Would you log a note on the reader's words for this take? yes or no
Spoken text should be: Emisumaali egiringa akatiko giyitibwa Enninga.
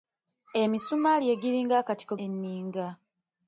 yes